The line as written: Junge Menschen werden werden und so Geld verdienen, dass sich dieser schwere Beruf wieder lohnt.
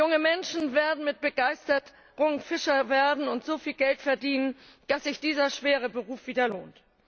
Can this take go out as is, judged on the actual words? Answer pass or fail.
fail